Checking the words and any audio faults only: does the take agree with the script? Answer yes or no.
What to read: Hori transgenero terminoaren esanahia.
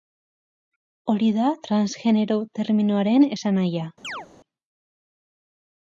no